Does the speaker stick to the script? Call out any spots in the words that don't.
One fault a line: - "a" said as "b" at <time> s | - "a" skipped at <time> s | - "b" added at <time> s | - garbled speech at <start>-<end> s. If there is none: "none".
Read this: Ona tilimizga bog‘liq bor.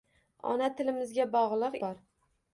none